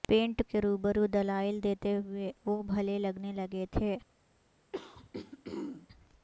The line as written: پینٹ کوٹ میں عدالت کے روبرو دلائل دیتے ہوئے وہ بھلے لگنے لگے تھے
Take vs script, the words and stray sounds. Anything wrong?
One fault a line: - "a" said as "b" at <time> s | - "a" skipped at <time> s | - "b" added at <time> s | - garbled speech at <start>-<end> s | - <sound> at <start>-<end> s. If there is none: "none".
- "کوٹ میں عدالت" skipped at 0.4 s
- throat clearing at 4.7-5.9 s